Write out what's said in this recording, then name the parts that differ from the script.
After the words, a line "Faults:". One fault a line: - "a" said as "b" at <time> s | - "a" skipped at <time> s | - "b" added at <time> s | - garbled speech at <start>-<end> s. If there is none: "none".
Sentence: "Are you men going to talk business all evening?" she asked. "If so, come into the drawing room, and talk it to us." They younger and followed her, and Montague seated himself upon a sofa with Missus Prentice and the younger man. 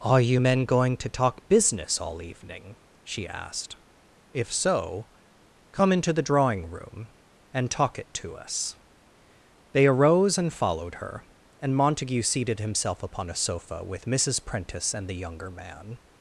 "Are you men going to talk business all evening?" she asked. "If so, come into the drawing room, and talk it to us." They arose and followed her, and Montague seated himself upon a sofa with Missus Prentice and the younger man.
Faults:
- "younger" said as "arose" at 9.9 s